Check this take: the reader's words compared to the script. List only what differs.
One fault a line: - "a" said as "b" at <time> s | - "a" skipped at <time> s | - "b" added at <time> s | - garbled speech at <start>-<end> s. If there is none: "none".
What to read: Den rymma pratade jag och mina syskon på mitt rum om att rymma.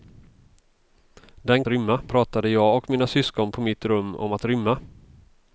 none